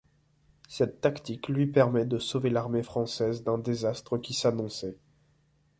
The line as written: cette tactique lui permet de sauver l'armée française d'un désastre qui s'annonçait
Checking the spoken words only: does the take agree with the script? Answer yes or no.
yes